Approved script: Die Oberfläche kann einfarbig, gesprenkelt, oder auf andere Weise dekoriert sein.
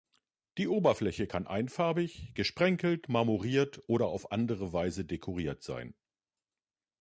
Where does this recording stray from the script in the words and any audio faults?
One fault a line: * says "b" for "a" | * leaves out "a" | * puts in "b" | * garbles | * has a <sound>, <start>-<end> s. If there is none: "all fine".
* puts in "marmoriert"